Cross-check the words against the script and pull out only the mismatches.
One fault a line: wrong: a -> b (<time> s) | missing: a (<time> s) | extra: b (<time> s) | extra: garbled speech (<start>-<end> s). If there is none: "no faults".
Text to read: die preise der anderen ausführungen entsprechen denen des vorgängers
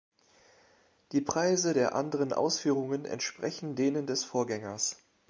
no faults